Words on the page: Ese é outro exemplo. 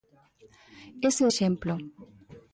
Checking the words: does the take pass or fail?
fail